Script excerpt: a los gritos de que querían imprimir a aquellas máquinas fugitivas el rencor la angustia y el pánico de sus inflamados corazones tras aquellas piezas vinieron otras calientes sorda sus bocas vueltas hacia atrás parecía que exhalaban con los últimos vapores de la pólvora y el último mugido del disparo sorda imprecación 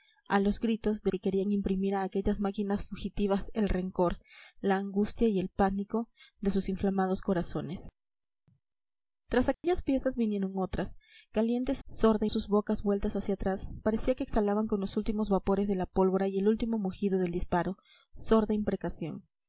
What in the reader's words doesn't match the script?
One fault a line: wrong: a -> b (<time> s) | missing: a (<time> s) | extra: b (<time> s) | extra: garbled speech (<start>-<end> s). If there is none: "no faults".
no faults